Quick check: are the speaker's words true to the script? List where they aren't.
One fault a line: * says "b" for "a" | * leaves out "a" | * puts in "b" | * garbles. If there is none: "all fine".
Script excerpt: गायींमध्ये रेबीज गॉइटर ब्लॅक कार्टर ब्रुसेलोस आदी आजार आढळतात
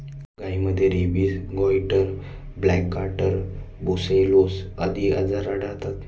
all fine